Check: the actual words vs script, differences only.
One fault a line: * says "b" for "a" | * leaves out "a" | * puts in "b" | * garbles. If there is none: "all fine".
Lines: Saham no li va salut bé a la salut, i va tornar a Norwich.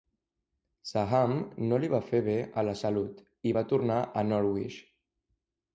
* says "fer" for "salut"